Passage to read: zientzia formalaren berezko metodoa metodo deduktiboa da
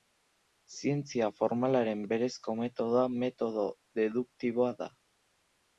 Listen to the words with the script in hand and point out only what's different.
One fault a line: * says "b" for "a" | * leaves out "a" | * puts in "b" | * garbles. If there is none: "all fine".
all fine